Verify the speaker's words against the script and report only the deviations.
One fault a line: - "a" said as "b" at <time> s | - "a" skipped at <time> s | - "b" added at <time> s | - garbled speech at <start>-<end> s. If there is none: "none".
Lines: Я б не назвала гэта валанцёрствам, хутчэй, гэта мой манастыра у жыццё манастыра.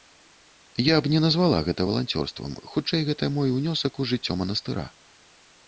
- "манастыра" said as "унёсак" at 3.6 s